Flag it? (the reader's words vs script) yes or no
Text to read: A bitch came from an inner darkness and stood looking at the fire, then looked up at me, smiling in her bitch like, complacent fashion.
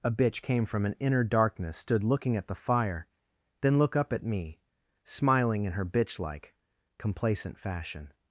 yes